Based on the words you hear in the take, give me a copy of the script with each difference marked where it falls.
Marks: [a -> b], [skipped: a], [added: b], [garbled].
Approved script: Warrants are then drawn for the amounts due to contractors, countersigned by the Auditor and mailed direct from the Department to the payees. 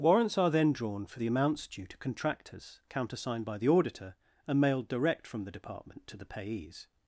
Warrants are then drawn for the amounts due to contractors, countersigned by the Auditor and mailed direct from the Department to the payees.